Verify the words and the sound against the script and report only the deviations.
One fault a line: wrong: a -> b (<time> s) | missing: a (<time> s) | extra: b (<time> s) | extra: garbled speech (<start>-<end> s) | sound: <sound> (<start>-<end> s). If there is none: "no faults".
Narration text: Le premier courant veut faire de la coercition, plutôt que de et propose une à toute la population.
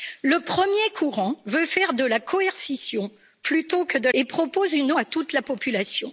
no faults